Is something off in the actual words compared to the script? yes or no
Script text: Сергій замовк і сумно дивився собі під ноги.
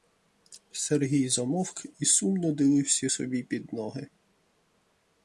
no